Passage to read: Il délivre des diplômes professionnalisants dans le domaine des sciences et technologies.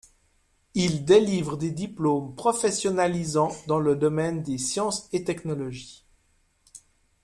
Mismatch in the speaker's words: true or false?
false